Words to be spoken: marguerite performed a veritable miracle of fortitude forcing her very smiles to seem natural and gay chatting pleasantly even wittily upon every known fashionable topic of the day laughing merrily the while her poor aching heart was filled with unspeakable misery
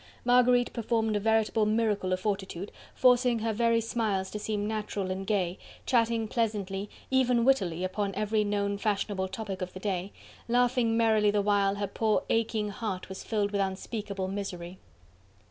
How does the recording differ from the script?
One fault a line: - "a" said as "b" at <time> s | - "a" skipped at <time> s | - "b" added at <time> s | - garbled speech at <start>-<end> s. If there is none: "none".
none